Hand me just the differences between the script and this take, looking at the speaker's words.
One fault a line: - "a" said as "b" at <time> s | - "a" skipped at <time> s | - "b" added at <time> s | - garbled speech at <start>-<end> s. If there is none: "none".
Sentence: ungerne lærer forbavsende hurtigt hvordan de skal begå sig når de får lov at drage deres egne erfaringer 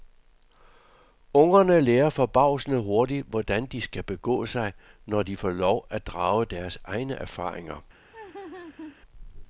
none